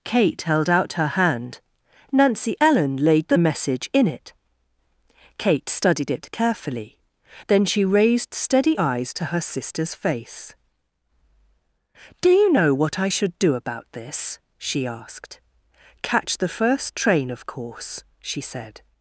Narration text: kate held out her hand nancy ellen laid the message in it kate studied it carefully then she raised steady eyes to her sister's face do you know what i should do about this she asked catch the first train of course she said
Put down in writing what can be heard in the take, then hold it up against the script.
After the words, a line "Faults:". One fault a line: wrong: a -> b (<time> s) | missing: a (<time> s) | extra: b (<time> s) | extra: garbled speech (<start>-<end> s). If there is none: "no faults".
kate held out her hand nancy ellen laid the message in it kate studied it carefully then she raised steady eyes to her sister's face do you know what i should do about this she asked catch the first train of course she said
Faults:
no faults